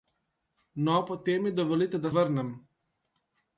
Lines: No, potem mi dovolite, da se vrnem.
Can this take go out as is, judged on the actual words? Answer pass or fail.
fail